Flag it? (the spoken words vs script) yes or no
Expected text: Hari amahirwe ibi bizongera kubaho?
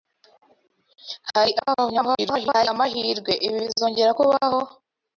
yes